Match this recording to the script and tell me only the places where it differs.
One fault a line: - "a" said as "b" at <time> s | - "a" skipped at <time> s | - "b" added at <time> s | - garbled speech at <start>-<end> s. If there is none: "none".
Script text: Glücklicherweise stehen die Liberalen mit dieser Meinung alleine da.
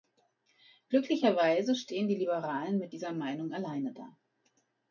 none